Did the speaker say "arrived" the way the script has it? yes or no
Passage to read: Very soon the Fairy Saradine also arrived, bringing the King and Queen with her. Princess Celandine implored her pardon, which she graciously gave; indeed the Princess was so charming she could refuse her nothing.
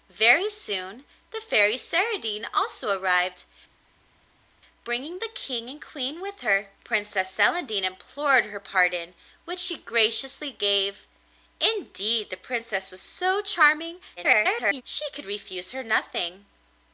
yes